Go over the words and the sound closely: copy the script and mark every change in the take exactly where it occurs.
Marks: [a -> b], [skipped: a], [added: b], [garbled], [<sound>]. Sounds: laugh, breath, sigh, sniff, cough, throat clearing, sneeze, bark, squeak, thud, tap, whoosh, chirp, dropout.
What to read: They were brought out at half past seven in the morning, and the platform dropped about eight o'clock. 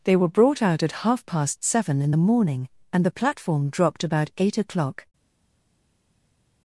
They were brought out at half past seven in the morning, and the platform dropped about eight o'clock.